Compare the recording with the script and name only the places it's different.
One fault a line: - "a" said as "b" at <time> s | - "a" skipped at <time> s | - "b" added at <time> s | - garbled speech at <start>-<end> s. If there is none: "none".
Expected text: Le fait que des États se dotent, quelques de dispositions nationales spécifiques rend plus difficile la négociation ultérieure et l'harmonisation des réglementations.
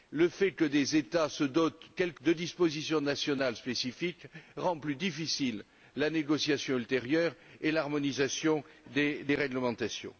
none